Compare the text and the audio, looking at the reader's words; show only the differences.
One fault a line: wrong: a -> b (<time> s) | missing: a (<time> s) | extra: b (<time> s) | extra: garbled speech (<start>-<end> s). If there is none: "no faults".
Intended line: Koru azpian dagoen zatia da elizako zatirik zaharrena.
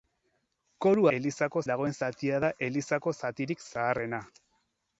wrong: azpian -> elizako (1.2 s)